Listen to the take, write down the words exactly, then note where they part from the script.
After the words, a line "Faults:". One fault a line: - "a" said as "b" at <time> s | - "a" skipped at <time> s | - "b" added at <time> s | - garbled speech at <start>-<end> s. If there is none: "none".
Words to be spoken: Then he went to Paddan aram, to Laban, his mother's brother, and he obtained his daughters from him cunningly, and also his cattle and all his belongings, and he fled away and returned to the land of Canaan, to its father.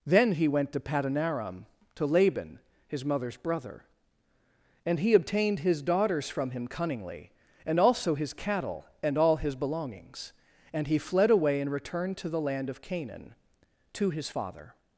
Then he went to Paddan aram, to Laban, his mother's brother, and he obtained his daughters from him cunningly, and also his cattle and all his belongings, and he fled away and returned to the land of Canaan, to his father.
Faults:
- "its" said as "his" at 14.1 s